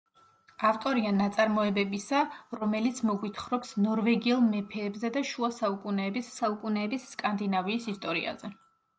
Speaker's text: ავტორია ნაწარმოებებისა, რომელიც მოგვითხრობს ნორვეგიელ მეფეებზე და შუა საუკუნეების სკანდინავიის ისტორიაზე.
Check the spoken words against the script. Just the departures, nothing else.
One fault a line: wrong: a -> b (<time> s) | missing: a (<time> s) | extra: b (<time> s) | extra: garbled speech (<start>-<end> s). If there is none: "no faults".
extra: საუკუნეების (6.4 s)